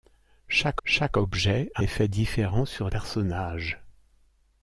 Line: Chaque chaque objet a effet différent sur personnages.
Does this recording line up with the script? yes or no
yes